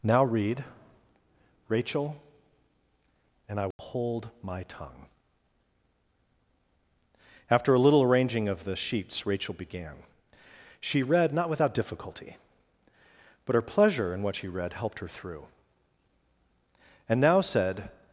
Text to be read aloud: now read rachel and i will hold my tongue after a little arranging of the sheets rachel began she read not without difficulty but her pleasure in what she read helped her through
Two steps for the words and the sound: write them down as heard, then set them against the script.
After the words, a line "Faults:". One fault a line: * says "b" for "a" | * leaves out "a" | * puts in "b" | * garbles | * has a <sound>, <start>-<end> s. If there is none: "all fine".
now read rachel and i will hold my tongue after a little arranging of the sheets rachel began she read not without difficulty but her pleasure in what she read helped her through and now said
Faults:
* has a dropout, 3.7-3.8 s
* puts in "and now said"